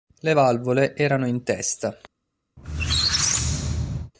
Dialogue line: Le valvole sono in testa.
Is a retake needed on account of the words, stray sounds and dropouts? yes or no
yes